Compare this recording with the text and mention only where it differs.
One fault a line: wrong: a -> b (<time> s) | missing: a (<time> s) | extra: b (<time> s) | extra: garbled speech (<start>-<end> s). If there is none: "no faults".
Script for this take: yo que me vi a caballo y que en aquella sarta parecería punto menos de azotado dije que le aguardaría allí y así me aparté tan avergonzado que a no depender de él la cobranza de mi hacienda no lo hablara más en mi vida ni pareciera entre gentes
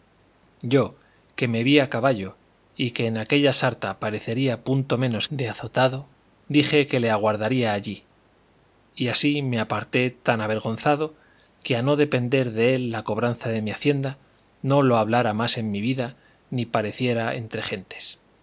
no faults